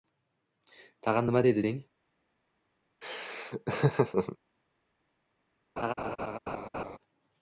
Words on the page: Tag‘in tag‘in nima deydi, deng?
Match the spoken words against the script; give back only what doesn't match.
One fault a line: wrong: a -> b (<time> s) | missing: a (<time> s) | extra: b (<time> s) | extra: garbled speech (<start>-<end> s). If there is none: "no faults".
missing: tag‘in (1.3 s)